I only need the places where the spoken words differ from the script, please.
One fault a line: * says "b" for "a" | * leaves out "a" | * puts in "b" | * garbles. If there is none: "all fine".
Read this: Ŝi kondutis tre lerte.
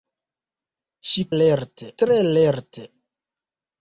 * says "lerte" for "kondutis"